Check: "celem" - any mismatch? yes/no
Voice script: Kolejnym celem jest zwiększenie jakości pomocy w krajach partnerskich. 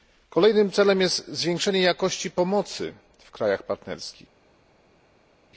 no